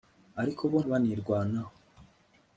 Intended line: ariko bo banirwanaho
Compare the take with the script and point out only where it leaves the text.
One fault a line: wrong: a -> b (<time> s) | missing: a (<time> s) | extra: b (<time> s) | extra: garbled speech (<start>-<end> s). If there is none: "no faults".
no faults